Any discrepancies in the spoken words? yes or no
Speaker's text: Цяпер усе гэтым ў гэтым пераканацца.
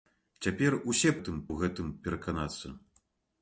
no